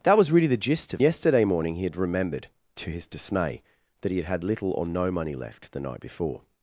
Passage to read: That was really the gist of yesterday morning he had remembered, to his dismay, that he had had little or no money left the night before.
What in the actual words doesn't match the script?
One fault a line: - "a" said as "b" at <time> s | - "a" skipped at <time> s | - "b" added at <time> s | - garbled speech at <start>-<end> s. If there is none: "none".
none